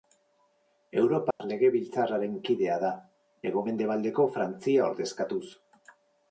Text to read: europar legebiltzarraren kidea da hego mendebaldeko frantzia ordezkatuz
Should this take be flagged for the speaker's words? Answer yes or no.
no